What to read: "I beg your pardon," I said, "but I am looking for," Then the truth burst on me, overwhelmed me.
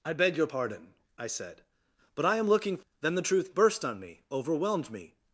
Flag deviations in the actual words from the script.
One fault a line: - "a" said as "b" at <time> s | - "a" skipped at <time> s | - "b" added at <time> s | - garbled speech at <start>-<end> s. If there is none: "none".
- "for" skipped at 2.8 s